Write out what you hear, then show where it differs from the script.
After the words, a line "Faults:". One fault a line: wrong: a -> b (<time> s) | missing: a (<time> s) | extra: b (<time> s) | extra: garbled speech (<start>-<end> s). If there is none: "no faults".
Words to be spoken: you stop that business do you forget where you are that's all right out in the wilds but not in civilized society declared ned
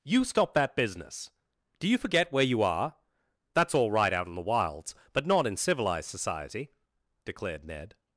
you stop that business do you forget where you are that's all right out in the wilds but not in civilized society declared ned
Faults:
no faults